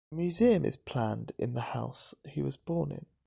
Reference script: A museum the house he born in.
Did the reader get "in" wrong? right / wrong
right